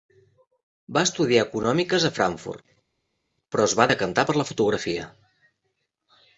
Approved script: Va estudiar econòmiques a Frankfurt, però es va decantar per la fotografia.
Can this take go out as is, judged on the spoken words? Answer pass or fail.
pass